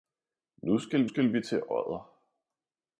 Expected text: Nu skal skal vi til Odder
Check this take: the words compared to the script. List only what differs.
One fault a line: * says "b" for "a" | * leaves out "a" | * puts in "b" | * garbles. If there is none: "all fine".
all fine